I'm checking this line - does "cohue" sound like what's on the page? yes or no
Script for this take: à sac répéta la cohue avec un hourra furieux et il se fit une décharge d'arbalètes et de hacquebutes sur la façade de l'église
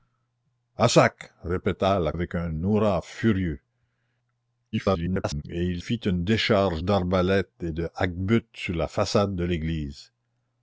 no